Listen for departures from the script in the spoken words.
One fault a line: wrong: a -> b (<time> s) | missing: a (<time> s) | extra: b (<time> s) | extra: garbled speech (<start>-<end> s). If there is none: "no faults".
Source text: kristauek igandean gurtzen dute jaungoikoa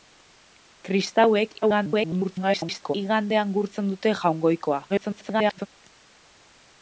extra: garbled speech (1.6-2.9 s)
extra: garbled speech (4.9-5.7 s)